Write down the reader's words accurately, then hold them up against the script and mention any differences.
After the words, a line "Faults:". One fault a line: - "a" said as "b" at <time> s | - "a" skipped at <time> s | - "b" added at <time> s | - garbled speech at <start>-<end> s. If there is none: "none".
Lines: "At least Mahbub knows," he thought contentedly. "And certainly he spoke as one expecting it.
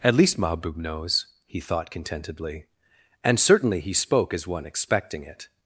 "At least Mahbub knows," he thought contentedly. "And certainly he spoke as one expecting it.
Faults:
none